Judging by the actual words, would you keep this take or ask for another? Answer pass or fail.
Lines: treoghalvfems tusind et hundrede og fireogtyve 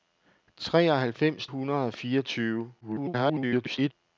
fail